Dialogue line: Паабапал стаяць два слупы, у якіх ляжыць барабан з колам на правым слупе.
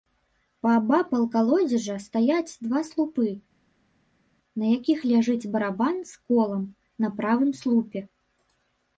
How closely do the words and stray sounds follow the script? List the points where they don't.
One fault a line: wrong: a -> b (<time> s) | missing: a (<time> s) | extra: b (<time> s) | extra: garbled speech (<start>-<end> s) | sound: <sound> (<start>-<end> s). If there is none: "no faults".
extra: калодзежа (1.4 s)
wrong: у -> на (4.6 s)